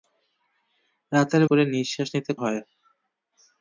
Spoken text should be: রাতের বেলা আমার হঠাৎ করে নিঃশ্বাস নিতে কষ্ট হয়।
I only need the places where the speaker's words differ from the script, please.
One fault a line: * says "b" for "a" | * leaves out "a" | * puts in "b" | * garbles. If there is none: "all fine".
* leaves out "বেলা আমার হঠাৎ"
* leaves out "কষ্ট"